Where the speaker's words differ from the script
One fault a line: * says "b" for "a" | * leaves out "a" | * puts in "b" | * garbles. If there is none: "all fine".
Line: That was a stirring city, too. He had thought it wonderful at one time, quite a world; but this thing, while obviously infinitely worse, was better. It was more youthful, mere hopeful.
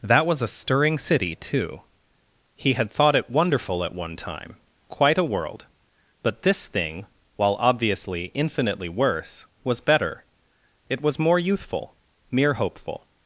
all fine